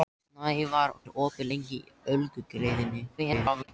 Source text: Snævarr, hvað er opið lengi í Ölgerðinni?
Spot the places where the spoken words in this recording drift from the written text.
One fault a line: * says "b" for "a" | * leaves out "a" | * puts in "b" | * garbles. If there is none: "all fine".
* leaves out "hvað"
* garbles